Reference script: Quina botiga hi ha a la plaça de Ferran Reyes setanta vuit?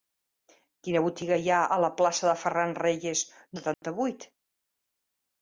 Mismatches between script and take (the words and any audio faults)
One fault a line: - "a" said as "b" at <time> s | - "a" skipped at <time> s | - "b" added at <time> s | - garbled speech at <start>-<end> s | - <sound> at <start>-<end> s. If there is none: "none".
- dropout at 3.7-3.8 s